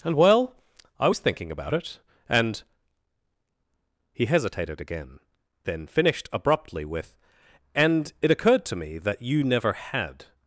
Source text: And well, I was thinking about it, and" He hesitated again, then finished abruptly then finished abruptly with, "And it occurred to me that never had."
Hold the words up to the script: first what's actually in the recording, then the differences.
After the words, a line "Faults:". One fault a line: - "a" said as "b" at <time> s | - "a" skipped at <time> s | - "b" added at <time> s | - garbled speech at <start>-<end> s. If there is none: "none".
And well, I was thinking about it, and" He hesitated again, then finished abruptly with, "And it occurred to me that you never had."
Faults:
- "then finished abruptly" skipped at 6.8 s
- "you" added at 9.2 s